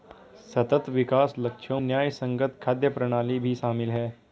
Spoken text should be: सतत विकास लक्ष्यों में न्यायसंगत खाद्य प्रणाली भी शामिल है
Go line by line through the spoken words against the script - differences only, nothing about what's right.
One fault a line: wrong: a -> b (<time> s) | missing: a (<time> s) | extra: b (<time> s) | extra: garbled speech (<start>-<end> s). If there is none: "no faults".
missing: में (1.8 s)